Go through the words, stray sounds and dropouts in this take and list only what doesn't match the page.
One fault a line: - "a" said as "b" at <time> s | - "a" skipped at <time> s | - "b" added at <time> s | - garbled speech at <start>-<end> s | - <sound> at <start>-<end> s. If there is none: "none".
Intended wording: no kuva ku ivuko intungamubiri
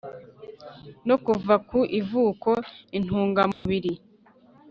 - dropout at 3.5-3.7 s